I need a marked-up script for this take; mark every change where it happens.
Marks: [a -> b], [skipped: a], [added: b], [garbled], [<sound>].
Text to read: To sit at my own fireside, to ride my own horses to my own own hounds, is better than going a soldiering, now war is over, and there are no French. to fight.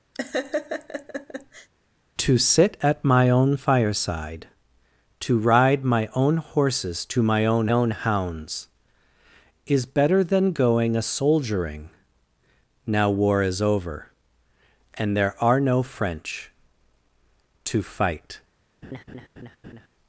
[laugh] To sit at my own fireside, to ride my own horses to my own own hounds, is better than going a soldiering, now war is over, and there are no French. to fight. [laugh]